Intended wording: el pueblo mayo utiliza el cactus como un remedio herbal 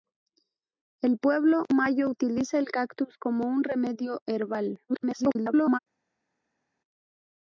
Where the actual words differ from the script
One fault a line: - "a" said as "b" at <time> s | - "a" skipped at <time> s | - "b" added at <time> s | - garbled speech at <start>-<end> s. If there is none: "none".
- garbled speech at 4.9-5.8 s